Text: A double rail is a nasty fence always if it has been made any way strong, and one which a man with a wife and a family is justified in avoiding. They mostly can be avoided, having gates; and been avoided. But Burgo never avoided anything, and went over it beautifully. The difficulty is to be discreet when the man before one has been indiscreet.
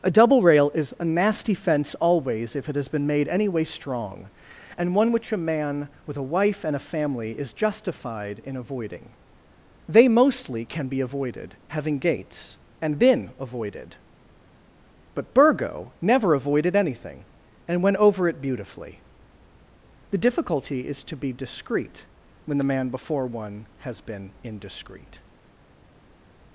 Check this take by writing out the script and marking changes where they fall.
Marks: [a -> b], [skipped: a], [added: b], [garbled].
A double rail is a nasty fence always if it has been made any way strong, and one which a man with a wife and a family is justified in avoiding. They mostly can be avoided, having gates; and been avoided. But Burgo never avoided anything, and went over it beautifully. The difficulty is to be discreet when the man before one has been indiscreet.